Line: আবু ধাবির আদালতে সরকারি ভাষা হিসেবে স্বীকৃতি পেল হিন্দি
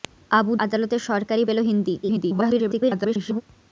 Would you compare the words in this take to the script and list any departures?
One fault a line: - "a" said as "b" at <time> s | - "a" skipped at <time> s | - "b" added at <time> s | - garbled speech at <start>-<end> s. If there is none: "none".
- "ধাবির" skipped at 0.5 s
- "ভাষা হিসেবে স্বীকৃতি" skipped at 1.4 s
- garbled speech at 2.0-3.4 s